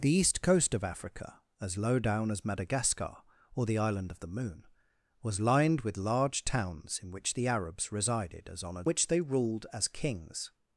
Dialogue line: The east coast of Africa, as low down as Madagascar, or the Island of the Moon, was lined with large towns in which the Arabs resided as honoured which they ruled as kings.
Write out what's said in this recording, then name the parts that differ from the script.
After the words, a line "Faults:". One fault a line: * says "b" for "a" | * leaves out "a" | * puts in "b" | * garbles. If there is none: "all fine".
The east coast of Africa, as low down as Madagascar, or the Island of the Moon, was lined with large towns in which the Arabs resided as honoured which they ruled as kings.
Faults:
all fine